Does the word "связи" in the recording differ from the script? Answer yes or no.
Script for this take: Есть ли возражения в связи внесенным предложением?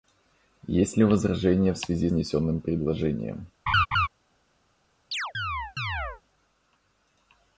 no